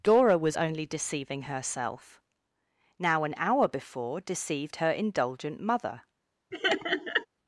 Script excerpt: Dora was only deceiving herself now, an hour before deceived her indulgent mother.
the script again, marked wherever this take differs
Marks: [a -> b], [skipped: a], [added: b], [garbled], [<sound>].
Dora was only deceiving herself now, an hour before deceived her indulgent mother. [laugh]